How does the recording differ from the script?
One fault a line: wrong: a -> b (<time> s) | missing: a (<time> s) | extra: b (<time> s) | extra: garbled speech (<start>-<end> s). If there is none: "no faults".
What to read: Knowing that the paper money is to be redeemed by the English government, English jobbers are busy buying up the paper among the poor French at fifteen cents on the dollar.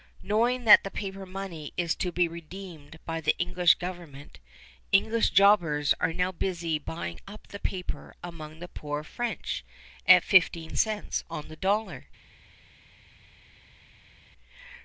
extra: now (6.1 s)